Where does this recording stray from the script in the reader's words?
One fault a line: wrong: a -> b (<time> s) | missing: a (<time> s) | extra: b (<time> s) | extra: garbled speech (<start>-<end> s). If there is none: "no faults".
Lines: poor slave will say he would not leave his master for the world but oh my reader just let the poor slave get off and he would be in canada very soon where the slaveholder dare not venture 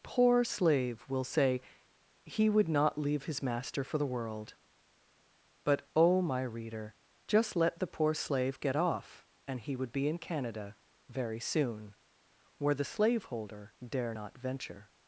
no faults